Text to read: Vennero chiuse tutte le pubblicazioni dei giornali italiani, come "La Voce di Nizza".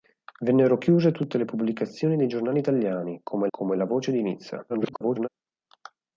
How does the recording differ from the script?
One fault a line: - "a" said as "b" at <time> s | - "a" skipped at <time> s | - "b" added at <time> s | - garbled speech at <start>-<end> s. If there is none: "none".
- "come" added at 3.5 s
- garbled speech at 4.7-5.3 s